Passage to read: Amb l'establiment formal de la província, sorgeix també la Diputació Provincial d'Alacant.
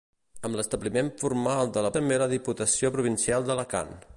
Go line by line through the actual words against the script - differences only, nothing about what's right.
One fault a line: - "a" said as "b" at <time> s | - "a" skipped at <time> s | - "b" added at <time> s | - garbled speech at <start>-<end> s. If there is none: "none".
- "província sorgeix" skipped at 1.9 s